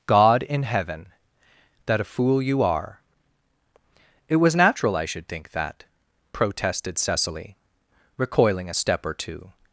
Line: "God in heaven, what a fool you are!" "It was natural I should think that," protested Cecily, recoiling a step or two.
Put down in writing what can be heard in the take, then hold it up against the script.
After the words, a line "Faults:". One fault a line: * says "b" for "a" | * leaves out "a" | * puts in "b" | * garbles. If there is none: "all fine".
"God in heaven, that a fool you are!" "It was natural I should think that," protested Cecily, recoiling a step or two.
Faults:
* says "that" for "what"